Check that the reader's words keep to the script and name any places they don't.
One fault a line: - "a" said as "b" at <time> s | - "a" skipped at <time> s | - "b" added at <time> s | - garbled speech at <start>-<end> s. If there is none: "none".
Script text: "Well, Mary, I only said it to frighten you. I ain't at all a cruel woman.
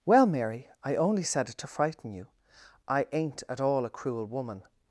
none